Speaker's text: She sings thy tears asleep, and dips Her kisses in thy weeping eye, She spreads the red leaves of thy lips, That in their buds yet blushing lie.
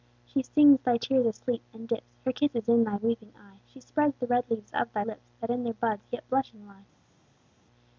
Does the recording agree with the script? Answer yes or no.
yes